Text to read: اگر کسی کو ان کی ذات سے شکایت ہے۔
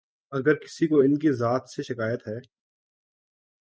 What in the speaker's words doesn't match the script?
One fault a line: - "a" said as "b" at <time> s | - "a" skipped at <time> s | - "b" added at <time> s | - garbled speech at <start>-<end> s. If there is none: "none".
none